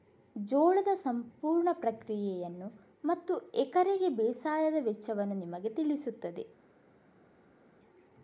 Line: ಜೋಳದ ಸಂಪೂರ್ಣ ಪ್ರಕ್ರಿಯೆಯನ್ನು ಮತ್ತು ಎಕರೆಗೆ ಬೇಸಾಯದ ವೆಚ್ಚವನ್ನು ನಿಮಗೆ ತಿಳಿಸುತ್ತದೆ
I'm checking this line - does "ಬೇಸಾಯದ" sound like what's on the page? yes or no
yes